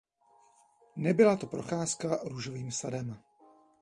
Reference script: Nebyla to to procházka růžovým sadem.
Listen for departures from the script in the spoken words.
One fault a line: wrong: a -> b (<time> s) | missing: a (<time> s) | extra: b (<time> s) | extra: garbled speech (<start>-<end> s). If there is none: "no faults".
missing: to (1.5 s)